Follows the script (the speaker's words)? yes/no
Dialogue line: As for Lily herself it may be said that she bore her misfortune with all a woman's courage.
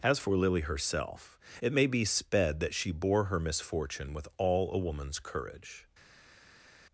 no